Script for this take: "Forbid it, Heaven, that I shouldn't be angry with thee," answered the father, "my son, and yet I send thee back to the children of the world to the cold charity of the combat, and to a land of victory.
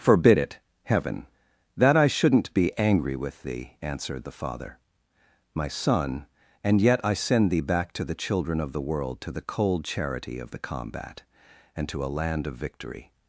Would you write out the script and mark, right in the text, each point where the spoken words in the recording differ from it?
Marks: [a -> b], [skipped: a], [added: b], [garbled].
"Forbid it, Heaven, that I shouldn't be angry with thee," answered the father, "my son, and yet I send thee back to the children of the world to the cold charity of the combat, and to a land of victory.